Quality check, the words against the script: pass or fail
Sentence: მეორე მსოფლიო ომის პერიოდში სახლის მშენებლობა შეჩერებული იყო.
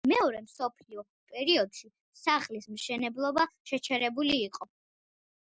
fail